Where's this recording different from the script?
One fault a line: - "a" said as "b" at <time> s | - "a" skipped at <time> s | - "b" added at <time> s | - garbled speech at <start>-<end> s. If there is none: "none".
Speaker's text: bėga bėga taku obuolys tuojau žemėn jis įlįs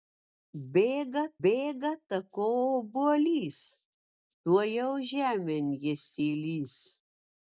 none